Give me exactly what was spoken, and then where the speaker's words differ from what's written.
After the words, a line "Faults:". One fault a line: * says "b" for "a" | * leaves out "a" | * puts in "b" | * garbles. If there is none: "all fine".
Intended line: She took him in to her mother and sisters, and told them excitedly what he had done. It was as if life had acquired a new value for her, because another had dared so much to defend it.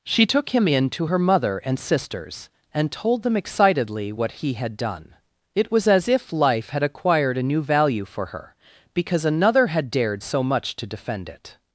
She took him in to her mother and sisters, and told them excitedly what he had done. It was as if life had acquired a new value for her, because another had dared so much to defend it.
Faults:
all fine